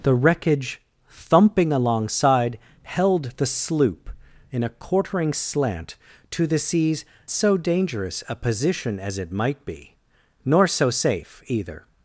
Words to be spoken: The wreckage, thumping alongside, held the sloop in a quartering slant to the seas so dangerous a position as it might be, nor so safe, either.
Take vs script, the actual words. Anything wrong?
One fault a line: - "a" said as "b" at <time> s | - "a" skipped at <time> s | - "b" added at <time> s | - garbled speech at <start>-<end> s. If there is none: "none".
none